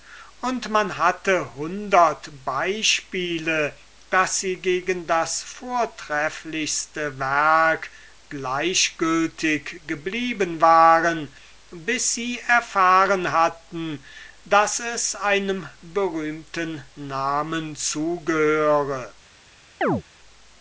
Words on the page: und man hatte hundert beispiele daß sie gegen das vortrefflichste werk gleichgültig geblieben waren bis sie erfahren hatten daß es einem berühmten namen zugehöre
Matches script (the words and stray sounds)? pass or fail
fail